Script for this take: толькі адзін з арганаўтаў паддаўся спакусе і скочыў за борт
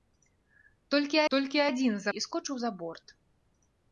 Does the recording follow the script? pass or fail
fail